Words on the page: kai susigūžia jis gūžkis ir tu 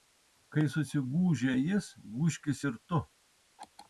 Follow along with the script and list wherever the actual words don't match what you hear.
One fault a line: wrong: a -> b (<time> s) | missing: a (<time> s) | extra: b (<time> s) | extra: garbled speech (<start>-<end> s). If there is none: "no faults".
no faults